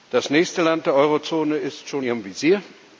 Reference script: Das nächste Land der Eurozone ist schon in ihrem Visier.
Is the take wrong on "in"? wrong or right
wrong